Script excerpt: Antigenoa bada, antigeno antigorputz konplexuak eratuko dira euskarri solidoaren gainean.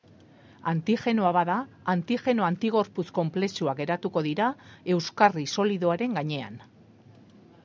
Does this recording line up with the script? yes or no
yes